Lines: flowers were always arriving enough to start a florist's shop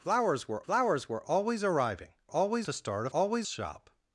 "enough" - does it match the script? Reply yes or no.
no